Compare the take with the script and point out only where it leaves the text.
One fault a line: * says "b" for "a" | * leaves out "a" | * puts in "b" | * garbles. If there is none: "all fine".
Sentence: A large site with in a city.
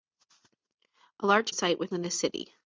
all fine